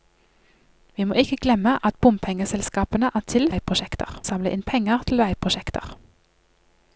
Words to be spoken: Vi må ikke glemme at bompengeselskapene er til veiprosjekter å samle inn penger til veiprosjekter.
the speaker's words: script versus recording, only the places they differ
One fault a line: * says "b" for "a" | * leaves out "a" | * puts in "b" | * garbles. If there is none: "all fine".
all fine